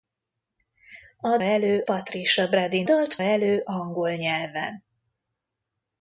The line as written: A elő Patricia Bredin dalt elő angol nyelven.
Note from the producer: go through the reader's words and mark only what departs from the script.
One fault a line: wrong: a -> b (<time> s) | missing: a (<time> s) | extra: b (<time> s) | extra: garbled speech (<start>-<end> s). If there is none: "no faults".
no faults